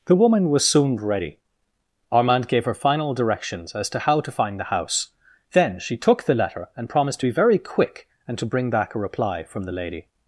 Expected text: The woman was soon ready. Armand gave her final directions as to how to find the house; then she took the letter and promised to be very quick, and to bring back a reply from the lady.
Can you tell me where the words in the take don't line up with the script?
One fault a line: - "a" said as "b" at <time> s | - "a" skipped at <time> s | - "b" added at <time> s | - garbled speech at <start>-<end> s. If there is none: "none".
none